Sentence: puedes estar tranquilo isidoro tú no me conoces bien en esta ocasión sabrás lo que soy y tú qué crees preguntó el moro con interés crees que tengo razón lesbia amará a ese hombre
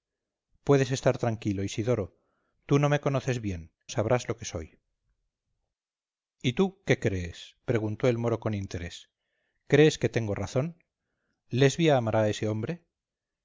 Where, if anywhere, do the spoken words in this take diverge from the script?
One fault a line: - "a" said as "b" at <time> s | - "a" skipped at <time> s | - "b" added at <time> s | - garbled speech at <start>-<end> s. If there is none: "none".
- "en esta ocasión" skipped at 3.7 s